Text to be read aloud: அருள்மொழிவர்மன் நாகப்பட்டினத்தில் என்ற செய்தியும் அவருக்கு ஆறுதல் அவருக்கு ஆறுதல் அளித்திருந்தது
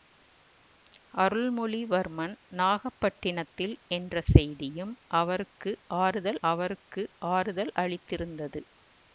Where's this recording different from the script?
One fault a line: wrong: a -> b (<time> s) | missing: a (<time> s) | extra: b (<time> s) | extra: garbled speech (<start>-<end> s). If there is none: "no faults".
no faults